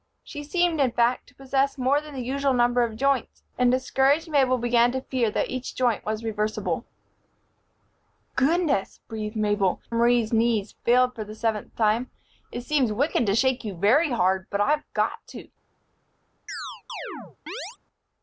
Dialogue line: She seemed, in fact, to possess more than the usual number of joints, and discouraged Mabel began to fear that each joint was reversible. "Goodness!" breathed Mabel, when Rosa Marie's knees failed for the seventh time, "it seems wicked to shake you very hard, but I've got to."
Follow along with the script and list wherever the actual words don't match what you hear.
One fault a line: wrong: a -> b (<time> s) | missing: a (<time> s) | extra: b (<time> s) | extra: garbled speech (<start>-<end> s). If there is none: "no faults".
missing: when Rosa (9.8 s)